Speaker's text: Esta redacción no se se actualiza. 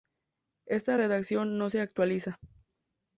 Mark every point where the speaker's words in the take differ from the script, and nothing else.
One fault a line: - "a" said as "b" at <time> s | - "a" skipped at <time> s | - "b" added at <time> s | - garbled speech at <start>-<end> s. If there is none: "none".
- "se" skipped at 1.8 s